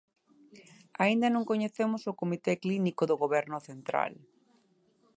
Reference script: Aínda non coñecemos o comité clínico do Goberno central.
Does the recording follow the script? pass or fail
pass